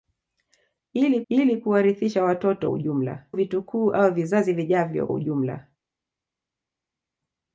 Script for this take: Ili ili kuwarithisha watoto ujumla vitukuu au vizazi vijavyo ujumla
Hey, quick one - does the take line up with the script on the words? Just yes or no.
yes